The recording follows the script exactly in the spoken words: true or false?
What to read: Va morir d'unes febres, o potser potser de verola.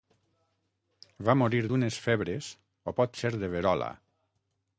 false